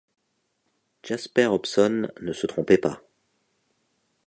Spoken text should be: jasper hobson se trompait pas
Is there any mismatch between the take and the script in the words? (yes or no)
yes